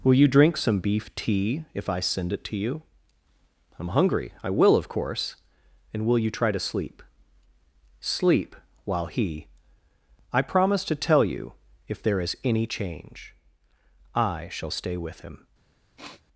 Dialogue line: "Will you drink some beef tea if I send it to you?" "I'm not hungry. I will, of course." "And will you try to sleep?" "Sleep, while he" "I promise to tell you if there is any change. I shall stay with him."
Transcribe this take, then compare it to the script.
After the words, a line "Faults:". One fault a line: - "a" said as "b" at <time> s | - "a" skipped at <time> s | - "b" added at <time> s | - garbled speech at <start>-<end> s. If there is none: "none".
"Will you drink some beef tea if I send it to you?" "I'm hungry. I will, of course." "And will you try to sleep?" "Sleep, while he" "I promise to tell you if there is any change. I shall stay with him."
Faults:
- "not" skipped at 3.9 s